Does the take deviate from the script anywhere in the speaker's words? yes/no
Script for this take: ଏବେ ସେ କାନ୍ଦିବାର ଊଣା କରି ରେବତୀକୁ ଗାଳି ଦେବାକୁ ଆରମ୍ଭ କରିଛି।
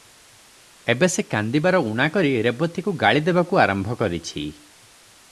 no